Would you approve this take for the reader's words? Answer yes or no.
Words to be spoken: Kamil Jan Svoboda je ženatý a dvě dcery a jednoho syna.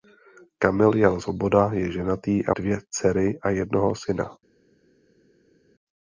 yes